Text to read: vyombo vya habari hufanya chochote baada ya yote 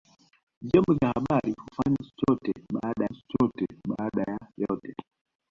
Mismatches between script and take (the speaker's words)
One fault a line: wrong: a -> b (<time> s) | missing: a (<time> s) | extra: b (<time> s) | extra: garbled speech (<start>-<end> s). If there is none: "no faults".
extra: chochote baada (3.1 s)